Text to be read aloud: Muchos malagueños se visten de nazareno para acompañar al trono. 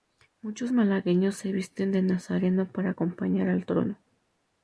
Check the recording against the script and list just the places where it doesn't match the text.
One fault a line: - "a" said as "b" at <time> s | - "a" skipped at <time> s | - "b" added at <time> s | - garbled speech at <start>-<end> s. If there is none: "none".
none